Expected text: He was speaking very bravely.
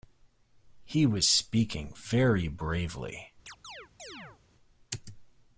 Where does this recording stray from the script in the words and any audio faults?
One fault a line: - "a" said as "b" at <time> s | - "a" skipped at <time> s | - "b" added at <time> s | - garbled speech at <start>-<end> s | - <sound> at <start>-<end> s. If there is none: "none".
- chirp at 3.5-4.4 s